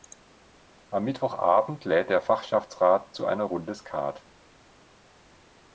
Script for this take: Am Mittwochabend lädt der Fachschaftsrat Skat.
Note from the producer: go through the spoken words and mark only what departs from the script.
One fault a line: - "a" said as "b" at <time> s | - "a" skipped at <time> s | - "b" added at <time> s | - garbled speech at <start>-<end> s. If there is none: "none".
- "zu einer Runde" added at 3.1 s